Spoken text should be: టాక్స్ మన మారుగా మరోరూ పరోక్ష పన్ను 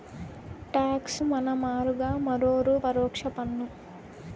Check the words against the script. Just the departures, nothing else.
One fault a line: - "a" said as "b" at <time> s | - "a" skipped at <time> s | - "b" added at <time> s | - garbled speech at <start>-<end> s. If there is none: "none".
none